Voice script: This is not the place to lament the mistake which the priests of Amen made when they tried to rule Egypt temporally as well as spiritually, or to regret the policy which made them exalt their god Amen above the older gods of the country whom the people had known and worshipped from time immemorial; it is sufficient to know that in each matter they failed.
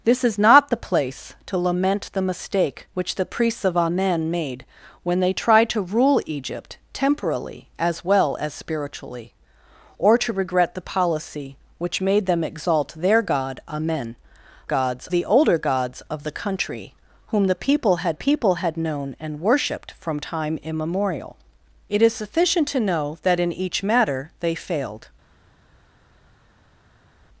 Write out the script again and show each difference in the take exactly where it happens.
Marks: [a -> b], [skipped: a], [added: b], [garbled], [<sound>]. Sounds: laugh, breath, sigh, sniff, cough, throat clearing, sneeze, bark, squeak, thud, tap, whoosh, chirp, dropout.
This is not the place to lament the mistake which the priests of Amen made when they tried to rule Egypt temporally as well as spiritually, or to regret the policy which made them exalt their god Amen [above -> gods] the older gods of the country whom the people had [added: people had] known and worshipped from time immemorial; it is sufficient to know that in each matter they failed.